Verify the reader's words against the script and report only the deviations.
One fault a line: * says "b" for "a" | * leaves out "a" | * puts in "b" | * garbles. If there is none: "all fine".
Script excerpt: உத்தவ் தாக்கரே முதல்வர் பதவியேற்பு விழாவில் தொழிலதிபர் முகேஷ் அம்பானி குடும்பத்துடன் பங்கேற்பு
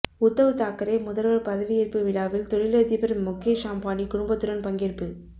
all fine